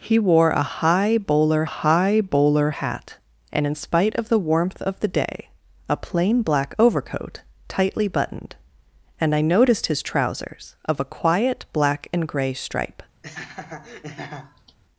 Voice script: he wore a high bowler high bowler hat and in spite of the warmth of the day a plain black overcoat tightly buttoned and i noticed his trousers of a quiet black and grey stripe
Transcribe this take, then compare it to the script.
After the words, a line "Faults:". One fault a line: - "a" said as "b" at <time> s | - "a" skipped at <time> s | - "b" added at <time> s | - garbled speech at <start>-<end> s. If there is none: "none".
he wore a high bowler high bowler hat and in spite of the warmth of the day a plain black overcoat tightly buttoned and i noticed his trousers of a quiet black and grey stripe
Faults:
none